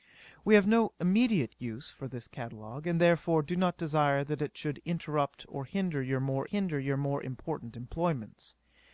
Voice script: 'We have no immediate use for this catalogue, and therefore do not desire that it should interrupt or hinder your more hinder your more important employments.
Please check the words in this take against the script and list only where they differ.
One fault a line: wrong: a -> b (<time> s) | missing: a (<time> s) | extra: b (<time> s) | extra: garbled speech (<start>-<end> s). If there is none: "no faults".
no faults